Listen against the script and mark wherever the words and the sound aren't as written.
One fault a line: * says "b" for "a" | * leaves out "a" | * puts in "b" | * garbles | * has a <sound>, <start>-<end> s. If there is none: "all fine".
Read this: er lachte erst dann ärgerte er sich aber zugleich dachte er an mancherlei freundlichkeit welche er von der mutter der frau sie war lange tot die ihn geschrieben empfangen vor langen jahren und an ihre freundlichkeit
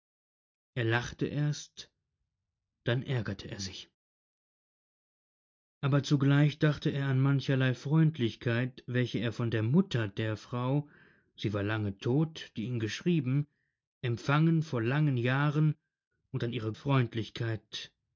all fine